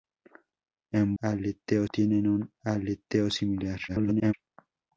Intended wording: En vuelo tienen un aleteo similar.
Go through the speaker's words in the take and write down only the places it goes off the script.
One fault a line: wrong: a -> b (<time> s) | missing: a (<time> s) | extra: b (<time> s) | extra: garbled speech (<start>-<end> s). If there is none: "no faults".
wrong: vuelo -> aleteo (1.2 s)
extra: garbled speech (3.9-4.3 s)